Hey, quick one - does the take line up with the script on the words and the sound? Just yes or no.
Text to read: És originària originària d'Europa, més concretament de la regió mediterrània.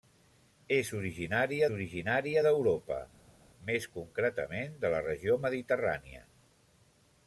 yes